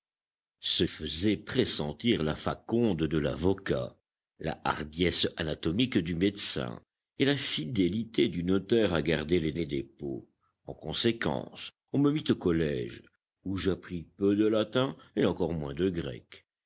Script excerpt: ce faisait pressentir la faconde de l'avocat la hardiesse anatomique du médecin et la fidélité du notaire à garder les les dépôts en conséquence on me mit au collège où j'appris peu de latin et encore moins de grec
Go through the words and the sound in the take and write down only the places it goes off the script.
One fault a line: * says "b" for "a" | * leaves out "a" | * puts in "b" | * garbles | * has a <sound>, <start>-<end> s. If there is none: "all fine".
all fine